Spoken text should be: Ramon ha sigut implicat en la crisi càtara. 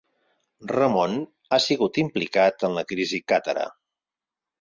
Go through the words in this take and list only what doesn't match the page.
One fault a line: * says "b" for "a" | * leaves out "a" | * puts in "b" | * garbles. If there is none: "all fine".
all fine